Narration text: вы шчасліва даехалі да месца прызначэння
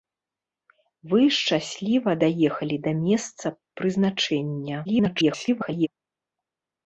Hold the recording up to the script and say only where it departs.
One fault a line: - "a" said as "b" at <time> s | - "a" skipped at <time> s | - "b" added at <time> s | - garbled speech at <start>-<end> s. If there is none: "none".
- garbled speech at 4.8-5.9 s